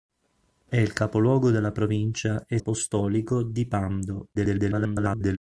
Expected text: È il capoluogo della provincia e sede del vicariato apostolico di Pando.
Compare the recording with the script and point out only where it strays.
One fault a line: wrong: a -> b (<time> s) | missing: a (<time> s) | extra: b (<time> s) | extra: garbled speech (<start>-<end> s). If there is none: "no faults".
missing: sede del vicariato (2.6 s)
extra: garbled speech (4.3-5.4 s)